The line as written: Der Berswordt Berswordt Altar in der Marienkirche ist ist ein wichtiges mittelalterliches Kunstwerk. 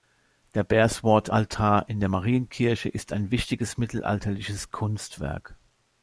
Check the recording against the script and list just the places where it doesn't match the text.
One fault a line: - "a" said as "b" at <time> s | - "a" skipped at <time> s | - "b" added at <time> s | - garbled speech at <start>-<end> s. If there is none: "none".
- "Berswordt" skipped at 1.3 s
- "ist" skipped at 3.1 s